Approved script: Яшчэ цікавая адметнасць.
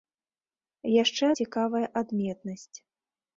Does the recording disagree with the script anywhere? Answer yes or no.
no